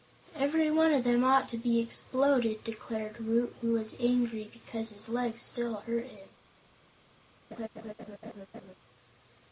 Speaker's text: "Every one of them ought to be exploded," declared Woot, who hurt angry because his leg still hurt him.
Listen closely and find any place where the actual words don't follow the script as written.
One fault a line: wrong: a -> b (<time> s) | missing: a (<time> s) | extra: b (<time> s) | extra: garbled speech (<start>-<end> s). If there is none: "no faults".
wrong: hurt -> was (3.7 s)